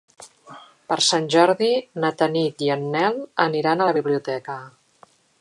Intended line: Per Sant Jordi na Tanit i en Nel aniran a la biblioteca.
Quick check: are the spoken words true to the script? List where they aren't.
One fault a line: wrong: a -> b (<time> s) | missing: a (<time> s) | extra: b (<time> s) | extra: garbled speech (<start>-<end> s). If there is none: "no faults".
no faults